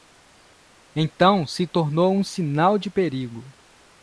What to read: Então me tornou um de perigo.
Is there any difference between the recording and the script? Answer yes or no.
yes